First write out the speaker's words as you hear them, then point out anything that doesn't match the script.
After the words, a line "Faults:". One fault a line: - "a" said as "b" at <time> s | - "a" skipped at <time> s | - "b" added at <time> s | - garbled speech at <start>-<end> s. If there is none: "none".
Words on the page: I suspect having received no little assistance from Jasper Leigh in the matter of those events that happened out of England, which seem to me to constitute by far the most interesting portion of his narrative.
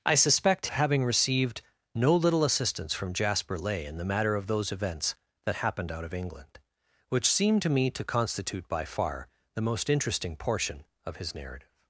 I suspect having received no little assistance from Jasper Leigh in the matter of those events that happened out of England, which seem to me to constitute by far the most interesting portion of his narrative.
Faults:
none